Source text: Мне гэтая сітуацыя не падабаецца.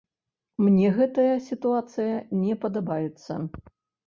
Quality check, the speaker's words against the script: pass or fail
pass